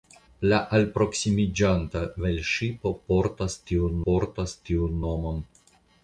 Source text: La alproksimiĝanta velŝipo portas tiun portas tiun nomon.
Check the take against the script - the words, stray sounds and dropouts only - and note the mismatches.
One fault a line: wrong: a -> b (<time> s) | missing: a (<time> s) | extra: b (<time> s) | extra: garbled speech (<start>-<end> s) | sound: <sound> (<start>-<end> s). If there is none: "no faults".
no faults